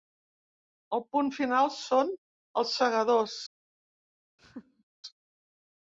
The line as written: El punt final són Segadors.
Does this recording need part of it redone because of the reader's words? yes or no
yes